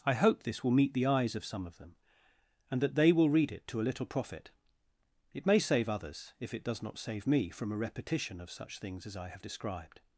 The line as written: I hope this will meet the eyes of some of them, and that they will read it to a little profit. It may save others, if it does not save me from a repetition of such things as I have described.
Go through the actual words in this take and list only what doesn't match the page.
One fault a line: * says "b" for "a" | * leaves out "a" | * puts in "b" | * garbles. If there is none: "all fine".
all fine